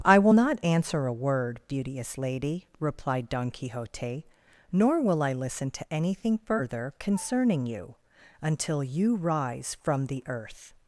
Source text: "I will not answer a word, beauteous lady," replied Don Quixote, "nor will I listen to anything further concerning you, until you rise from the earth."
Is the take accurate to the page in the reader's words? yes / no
yes